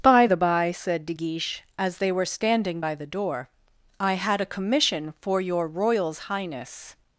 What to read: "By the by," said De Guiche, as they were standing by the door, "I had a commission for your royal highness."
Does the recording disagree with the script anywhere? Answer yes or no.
yes